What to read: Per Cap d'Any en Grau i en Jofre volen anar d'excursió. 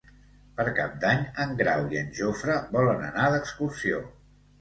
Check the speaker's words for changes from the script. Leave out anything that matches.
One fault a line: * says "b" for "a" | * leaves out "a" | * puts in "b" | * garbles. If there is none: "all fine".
all fine